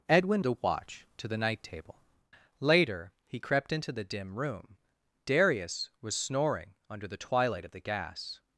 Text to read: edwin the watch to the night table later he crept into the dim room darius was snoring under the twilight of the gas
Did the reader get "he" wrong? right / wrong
right